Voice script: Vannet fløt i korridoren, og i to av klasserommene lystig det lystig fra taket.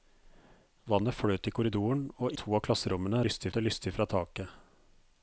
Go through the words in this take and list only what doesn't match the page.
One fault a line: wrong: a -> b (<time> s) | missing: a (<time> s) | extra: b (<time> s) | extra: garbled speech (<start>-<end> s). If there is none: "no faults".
no faults